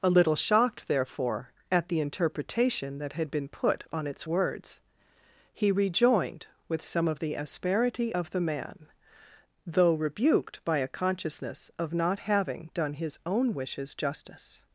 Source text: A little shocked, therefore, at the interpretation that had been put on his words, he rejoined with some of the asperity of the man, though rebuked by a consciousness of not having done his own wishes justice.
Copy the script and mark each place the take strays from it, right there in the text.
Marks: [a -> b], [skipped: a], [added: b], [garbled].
A little shocked, therefore, at the interpretation that had been put on [his -> its] words, he rejoined with some of the asperity of the man, though rebuked by a consciousness of not having done his own wishes justice.